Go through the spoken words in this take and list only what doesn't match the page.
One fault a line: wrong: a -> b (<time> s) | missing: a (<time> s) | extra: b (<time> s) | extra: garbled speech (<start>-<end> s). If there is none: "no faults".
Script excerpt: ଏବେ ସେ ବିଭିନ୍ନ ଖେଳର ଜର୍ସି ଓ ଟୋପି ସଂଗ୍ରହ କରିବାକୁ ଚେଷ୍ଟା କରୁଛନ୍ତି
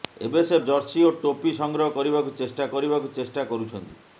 missing: ବିଭିନ୍ନ ଖେଳର (0.6 s)
extra: କରିବାକୁ ଚେଷ୍ଟା (2.7 s)